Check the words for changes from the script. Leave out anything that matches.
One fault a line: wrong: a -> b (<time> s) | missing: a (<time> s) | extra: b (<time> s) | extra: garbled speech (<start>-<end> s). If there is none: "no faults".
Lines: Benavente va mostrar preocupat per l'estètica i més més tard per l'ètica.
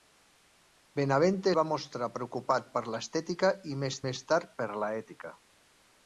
no faults